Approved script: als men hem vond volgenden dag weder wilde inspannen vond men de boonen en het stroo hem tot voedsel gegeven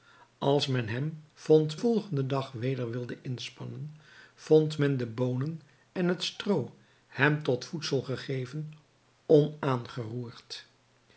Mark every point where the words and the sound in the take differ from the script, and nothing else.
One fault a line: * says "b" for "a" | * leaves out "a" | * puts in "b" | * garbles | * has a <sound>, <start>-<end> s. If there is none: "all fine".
all fine